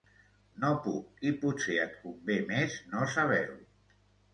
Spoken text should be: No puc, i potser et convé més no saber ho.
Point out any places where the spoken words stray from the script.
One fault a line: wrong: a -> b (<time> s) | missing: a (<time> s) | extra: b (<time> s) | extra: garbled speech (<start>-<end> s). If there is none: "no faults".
no faults